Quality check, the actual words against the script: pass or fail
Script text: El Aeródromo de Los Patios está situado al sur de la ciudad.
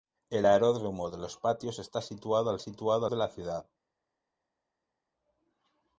fail